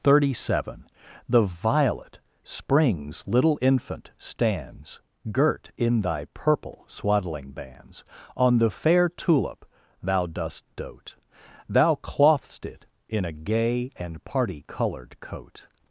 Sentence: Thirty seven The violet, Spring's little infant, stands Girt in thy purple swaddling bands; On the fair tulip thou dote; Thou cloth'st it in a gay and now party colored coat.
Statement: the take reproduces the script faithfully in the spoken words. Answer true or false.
false